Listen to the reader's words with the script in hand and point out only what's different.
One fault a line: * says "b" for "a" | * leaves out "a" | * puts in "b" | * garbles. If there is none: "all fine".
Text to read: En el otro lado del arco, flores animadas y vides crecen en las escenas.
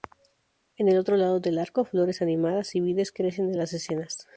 all fine